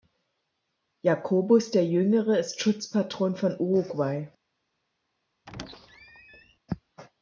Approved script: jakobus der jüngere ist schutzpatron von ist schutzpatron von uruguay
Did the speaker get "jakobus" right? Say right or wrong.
right